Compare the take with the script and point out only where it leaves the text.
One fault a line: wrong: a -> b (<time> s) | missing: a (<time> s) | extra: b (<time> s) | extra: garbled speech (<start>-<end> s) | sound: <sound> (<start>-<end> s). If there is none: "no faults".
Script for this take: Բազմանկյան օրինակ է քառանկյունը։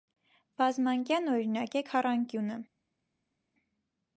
no faults